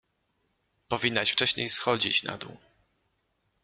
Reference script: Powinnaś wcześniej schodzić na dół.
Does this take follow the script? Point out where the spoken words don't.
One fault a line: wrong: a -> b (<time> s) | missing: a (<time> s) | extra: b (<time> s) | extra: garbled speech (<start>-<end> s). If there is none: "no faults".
no faults